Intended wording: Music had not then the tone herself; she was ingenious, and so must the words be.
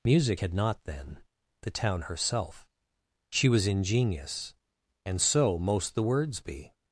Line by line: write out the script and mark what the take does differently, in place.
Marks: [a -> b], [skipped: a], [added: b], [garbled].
Music had not then the [tone -> town] herself; she was ingenious, and so [must -> most] the words be.